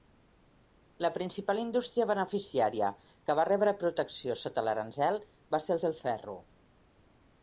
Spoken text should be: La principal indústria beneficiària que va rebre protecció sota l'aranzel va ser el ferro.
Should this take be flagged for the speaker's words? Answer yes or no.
yes